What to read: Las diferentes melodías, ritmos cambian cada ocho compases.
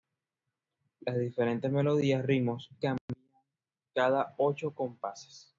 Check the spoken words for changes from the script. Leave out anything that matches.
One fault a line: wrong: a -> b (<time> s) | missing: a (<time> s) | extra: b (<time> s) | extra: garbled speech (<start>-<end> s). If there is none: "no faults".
no faults